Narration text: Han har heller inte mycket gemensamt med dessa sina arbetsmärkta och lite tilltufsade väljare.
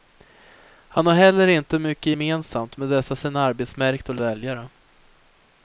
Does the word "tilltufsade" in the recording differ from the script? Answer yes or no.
yes